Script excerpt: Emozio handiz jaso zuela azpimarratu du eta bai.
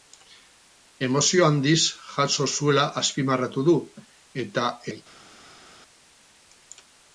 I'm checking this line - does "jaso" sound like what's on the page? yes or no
yes